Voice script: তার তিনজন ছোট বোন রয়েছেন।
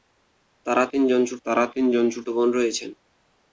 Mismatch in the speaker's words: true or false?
true